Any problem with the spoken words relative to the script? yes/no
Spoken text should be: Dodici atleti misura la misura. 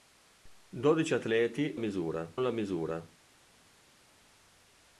no